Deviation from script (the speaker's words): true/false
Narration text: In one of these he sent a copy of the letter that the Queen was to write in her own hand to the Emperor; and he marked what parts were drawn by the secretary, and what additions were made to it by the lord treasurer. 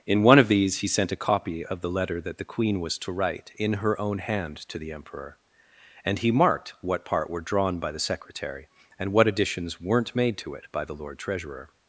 true